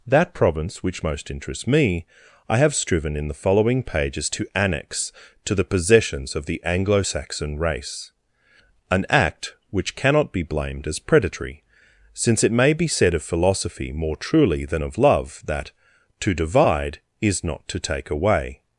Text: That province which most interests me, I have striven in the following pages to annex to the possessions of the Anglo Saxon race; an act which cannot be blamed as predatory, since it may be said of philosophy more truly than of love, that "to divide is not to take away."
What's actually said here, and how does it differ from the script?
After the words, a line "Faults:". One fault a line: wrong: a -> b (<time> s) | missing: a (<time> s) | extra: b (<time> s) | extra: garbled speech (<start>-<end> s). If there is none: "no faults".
That province which most interests me, I have striven in the following pages to annex to the possessions of the Anglo Saxon race; an act which cannot be blamed as predatory, since it may be said of philosophy more truly than of love, that "to divide is not to take away."
Faults:
no faults